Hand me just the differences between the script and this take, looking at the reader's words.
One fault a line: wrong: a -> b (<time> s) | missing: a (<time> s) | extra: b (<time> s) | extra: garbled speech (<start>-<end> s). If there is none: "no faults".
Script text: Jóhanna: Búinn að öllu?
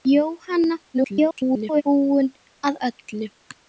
extra: garbled speech (0.9-1.8 s)